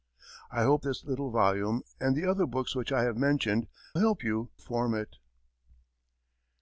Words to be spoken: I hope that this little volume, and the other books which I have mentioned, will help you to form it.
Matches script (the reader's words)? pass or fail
fail